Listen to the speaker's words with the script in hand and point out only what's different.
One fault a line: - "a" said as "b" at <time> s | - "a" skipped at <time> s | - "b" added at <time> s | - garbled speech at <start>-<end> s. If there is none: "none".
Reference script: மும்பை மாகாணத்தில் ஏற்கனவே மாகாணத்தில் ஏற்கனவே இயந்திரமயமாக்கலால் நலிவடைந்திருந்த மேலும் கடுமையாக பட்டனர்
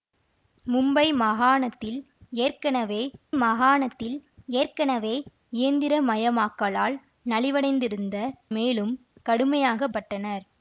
none